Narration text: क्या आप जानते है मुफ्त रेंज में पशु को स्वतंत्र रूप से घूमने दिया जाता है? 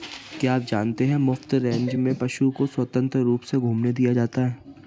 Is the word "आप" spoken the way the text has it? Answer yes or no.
yes